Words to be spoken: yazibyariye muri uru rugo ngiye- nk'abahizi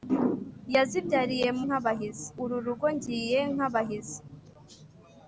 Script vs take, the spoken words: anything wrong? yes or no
yes